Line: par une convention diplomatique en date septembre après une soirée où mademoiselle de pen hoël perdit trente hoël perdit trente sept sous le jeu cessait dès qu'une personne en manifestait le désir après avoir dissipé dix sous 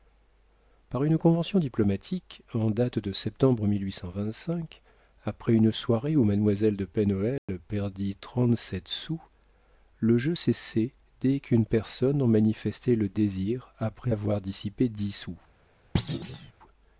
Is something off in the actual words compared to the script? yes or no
yes